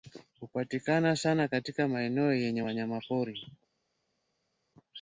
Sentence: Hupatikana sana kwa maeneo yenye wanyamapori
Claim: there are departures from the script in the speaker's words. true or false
true